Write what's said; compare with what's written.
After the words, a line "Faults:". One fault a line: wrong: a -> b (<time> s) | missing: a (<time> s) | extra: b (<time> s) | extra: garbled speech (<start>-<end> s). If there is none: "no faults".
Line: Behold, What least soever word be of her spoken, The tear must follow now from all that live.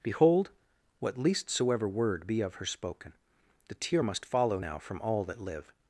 Behold, What least soever word be of her spoken, The tear must follow now from all that live.
Faults:
no faults